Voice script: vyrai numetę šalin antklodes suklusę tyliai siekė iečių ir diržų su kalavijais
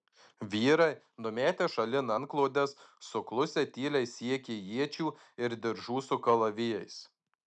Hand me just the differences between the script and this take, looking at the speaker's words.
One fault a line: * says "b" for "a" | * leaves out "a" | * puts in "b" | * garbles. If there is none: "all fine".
all fine